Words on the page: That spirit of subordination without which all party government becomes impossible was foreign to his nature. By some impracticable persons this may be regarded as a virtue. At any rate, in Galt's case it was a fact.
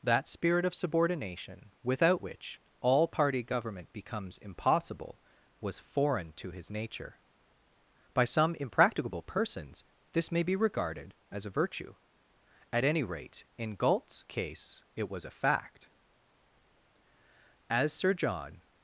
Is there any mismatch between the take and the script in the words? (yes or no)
yes